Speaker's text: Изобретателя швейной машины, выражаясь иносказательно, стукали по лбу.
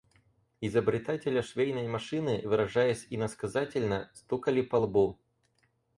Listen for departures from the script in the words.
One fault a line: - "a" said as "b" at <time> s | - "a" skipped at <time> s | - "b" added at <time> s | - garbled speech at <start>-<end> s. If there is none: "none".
none